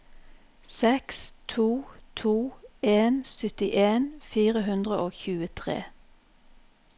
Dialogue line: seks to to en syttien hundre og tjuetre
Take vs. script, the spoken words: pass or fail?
fail